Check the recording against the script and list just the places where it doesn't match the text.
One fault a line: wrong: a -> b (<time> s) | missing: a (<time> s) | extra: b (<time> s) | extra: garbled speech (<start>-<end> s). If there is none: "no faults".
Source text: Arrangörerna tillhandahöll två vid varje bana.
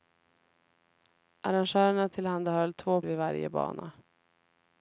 no faults